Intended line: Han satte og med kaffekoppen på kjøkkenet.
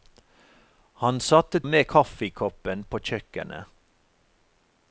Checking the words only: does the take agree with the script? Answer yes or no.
yes